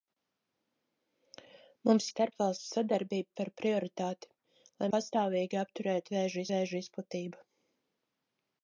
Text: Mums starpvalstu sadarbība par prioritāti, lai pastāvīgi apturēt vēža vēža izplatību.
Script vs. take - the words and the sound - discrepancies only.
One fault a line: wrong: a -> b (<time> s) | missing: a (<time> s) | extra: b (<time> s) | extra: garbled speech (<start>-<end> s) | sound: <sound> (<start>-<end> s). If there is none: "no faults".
no faults